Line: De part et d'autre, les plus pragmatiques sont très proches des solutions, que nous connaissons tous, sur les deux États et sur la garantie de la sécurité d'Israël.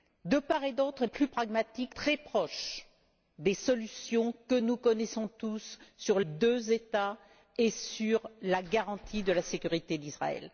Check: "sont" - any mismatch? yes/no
yes